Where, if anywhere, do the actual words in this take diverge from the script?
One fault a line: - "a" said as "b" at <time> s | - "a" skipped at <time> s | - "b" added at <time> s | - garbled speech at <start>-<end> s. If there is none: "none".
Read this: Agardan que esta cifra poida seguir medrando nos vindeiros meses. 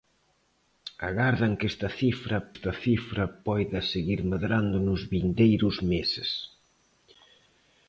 - "esta cifra" added at 2.5 s